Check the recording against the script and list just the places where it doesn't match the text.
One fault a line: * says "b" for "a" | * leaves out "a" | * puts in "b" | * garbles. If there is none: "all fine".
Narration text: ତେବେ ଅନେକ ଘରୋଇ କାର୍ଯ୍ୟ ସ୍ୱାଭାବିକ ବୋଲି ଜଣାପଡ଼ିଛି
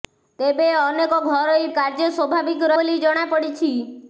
all fine